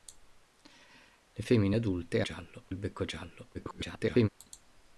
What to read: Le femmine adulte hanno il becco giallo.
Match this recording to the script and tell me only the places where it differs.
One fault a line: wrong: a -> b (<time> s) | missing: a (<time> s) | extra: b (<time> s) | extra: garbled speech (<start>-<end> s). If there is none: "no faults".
wrong: hanno -> giallo (2.2 s)
extra: garbled speech (3.5-4.3 s)